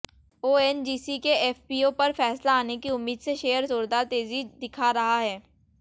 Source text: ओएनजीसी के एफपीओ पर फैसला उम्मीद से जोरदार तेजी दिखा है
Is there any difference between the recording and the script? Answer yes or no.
yes